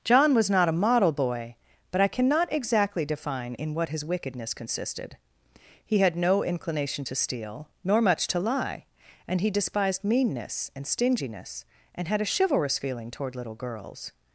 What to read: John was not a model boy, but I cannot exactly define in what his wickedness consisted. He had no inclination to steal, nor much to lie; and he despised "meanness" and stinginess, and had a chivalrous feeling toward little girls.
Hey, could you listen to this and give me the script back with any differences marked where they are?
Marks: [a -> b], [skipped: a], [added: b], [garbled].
John was not a model boy, but I cannot exactly define in what his wickedness consisted. He had no inclination to steal, nor much to lie; and he despised "meanness" and stinginess, and had a chivalrous feeling toward little girls.